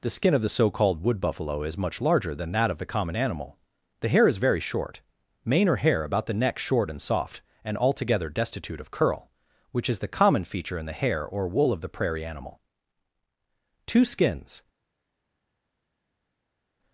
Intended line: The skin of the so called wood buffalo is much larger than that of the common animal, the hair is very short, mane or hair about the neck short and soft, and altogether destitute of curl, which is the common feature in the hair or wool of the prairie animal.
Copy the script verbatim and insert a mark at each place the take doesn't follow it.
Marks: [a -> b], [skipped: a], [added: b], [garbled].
The skin of the so called wood buffalo is much larger than that of the common animal, the hair is very short, mane or hair about the neck short and soft, and altogether destitute of curl, which is the common feature in the hair or wool of the prairie animal. [added: Two skins]